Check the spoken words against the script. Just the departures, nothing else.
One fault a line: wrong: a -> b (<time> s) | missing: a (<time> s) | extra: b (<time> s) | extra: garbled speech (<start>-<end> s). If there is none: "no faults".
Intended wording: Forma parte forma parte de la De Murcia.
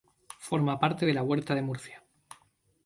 missing: forma parte (1.1 s)
extra: Huerta (1.2 s)